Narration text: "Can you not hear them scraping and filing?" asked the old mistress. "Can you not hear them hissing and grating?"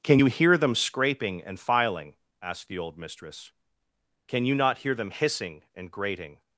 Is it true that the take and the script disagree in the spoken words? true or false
true